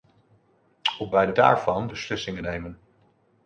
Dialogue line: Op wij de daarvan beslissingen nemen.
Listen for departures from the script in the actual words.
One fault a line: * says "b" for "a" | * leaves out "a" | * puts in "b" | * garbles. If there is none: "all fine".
all fine